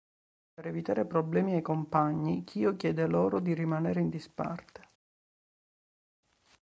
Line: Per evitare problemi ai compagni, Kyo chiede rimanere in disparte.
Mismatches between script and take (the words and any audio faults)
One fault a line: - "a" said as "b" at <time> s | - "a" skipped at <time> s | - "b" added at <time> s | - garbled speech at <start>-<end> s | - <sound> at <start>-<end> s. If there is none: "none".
- "loro di" added at 3.1 s